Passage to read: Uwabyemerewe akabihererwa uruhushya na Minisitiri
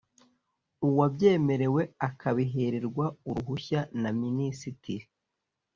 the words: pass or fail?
pass